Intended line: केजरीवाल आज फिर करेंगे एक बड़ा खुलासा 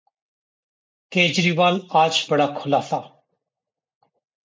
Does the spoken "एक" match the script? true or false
false